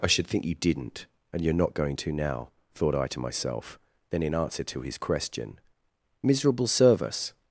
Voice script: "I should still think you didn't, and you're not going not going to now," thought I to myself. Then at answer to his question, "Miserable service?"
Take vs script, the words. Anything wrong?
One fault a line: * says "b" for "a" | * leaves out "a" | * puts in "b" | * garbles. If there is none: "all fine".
* leaves out "still"
* leaves out "not going"
* says "in" for "at"